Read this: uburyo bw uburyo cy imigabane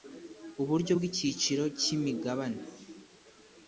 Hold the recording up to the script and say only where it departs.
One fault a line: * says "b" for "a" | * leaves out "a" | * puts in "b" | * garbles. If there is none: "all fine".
* says "icyiciro" for "uburyo"